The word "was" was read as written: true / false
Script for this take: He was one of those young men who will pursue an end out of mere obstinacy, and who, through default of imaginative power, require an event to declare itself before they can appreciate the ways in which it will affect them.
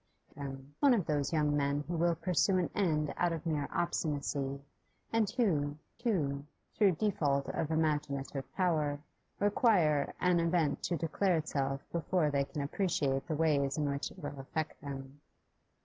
false